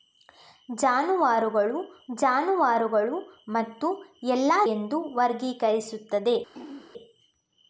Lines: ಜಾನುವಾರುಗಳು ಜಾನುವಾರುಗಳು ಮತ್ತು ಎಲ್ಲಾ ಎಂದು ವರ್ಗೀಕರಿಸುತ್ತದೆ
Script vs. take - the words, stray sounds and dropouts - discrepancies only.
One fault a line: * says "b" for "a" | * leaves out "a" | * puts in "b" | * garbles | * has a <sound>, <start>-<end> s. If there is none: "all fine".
* has a throat clearing, 6.5-6.9 s